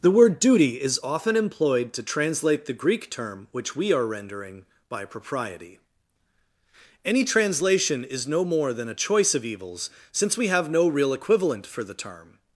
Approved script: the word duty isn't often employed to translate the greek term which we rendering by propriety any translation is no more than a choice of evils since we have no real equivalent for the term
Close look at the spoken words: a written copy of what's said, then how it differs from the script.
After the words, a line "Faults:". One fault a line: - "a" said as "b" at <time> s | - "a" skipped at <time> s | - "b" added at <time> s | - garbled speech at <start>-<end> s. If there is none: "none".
the word duty is often employed to translate the greek term which we are rendering by propriety any translation is no more than a choice of evils since we have no real equivalent for the term
Faults:
- "isn't" said as "is" at 0.8 s
- "are" added at 3.9 s